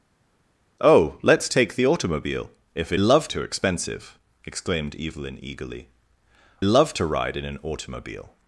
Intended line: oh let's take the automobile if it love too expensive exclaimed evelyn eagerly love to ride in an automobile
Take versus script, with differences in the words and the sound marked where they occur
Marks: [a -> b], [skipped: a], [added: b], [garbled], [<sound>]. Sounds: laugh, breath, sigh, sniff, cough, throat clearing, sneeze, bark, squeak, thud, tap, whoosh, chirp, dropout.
oh let's take the automobile if it love too expensive exclaimed evelyn eagerly love to ride in an automobile